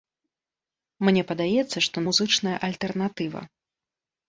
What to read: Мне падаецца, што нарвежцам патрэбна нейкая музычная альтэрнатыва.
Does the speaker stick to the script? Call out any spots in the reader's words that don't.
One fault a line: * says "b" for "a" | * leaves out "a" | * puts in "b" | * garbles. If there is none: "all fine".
* leaves out "нарвежцам патрэбна нейкая"